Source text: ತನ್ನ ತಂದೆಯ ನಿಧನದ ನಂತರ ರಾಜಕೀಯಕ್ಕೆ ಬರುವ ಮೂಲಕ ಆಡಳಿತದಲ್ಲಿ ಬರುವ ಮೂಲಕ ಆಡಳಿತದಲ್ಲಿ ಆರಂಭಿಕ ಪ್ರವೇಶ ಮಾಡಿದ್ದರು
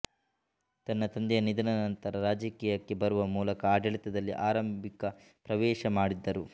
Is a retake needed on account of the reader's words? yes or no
yes